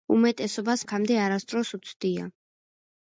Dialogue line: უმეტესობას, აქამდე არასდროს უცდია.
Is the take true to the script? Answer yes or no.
yes